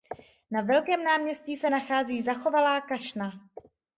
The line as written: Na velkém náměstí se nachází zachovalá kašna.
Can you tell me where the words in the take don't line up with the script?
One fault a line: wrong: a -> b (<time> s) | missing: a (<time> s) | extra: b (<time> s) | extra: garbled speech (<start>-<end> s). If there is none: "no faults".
no faults